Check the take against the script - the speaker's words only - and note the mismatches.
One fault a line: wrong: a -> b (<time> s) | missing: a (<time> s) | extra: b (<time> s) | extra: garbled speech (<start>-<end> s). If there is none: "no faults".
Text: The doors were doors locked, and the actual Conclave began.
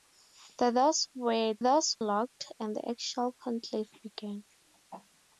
no faults